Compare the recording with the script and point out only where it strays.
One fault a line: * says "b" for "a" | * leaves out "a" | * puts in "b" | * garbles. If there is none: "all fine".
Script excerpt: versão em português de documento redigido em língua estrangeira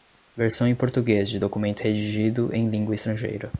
all fine